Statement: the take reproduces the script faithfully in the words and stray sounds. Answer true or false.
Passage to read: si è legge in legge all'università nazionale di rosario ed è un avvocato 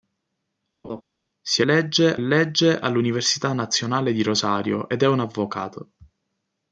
false